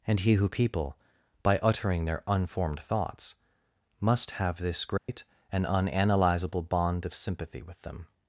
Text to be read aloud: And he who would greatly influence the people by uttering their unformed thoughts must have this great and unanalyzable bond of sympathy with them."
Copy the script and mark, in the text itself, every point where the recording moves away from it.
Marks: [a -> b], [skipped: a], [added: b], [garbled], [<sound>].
And he who [skipped: would greatly influence the] people by uttering their unformed thoughts must have this great [dropout] and unanalyzable bond of sympathy with them."